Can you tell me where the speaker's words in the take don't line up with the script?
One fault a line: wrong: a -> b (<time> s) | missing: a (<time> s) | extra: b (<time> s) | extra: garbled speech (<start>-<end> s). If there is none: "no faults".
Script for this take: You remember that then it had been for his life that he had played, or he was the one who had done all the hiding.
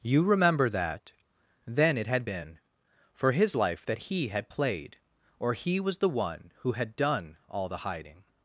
no faults